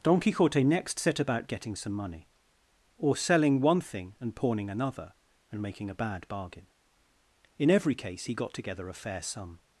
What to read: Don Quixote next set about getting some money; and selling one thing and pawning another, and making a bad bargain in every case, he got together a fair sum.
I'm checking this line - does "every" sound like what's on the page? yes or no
yes